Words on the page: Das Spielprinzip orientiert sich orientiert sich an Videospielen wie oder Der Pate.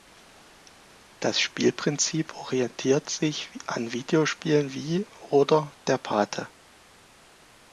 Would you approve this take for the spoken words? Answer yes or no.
no